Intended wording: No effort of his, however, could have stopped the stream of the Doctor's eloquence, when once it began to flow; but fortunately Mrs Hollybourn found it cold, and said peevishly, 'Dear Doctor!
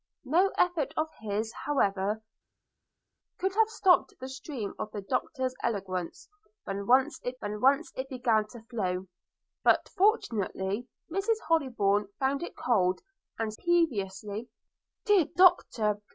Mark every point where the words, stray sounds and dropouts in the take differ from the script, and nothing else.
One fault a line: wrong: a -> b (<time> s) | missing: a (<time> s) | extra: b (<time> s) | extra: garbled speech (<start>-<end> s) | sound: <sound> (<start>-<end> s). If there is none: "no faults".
extra: when once it (7.4 s)
missing: said (13.5 s)